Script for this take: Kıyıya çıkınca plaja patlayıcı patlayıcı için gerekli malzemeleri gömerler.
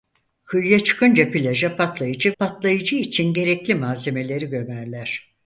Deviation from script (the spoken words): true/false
false